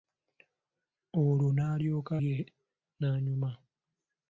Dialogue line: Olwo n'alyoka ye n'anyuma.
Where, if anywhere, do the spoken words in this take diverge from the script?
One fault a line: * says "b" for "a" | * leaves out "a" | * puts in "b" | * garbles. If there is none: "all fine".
all fine